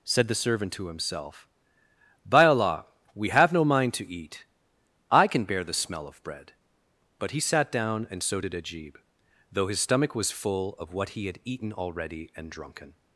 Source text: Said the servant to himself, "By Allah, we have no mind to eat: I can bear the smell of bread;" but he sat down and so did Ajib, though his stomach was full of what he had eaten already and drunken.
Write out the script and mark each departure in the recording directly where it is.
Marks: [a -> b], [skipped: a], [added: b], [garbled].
Said the servant to himself, "By Allah, we have no mind to eat: I can bear the smell of bread;" but he sat down and so did Ajib, though his stomach was full of what he had eaten already and drunken.